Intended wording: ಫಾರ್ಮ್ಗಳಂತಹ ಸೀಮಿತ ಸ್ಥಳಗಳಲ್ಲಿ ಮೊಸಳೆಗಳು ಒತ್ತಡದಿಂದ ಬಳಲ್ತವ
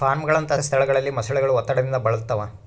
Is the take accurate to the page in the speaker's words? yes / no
no